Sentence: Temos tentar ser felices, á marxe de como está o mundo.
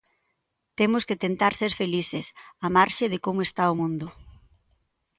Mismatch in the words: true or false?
true